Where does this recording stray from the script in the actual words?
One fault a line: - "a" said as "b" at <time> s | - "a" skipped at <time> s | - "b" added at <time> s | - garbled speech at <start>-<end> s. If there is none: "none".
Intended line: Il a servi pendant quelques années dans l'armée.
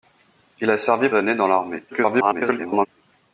- "pendant quelques" skipped at 1.1 s
- garbled speech at 1.9-2.9 s